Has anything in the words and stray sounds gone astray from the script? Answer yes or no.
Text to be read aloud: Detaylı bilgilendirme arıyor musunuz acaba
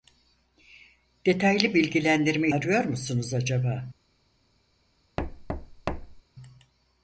yes